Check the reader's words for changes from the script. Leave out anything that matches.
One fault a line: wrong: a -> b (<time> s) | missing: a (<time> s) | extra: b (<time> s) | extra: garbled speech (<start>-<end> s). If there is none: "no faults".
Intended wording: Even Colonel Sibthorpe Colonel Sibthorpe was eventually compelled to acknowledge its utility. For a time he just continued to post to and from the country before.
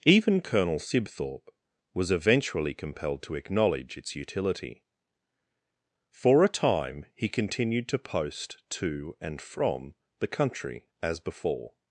missing: Colonel Sibthorpe (1.5 s)
missing: just (7.3 s)
extra: as (11.0 s)